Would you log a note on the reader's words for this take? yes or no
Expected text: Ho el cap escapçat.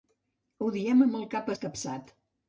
yes